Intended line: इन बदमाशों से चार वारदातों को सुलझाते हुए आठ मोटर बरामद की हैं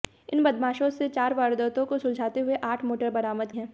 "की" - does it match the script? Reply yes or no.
no